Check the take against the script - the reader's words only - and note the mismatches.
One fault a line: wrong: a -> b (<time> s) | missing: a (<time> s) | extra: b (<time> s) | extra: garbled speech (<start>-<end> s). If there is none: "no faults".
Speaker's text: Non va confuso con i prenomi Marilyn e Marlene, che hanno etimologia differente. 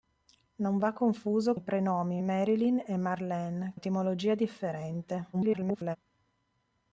missing: con (1.6 s)
missing: che hanno (3.7 s)
extra: garbled speech (5.3-6.0 s)